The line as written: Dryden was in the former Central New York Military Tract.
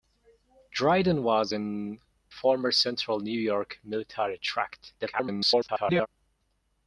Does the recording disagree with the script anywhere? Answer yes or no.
yes